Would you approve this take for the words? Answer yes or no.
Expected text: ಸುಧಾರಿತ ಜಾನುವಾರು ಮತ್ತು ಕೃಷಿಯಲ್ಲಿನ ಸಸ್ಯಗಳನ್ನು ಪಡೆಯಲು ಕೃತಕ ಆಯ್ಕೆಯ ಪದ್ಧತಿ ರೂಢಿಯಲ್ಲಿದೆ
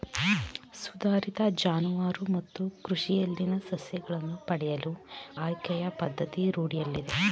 no